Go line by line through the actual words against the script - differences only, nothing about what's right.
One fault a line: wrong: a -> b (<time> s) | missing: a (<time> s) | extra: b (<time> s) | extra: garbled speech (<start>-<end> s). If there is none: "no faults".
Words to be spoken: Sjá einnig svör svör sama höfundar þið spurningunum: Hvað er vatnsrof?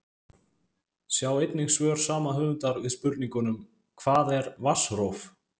missing: svör (2.0 s)
wrong: þið -> við (2.8 s)